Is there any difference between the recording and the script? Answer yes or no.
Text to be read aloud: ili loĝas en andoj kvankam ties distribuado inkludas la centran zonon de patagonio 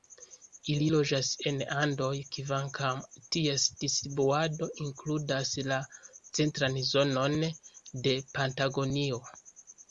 no